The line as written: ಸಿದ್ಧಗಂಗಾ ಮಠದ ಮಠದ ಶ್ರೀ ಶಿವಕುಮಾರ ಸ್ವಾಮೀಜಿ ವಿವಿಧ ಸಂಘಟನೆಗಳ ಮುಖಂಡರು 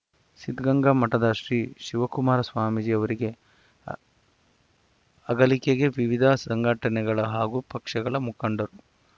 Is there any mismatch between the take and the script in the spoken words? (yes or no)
yes